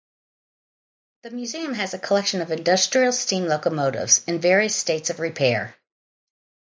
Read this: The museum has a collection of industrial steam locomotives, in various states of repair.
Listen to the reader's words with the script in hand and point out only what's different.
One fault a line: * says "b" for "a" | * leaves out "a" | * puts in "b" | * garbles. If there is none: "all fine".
all fine